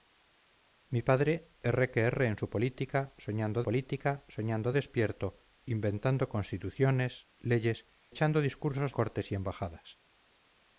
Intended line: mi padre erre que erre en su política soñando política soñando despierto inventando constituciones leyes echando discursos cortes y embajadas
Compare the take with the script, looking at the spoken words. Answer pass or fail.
pass